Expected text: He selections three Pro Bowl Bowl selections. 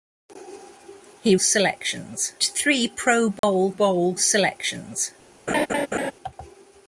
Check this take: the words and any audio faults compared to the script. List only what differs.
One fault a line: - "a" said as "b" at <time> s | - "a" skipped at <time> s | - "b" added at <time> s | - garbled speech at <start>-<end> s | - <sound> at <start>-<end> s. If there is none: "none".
- dropout at 3.4-3.4 s
- laugh at 5.5-6.1 s